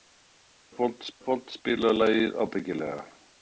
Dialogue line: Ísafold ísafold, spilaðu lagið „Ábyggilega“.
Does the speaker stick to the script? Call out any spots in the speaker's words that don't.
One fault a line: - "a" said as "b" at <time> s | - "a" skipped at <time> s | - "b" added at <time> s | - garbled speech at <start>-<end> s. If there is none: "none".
none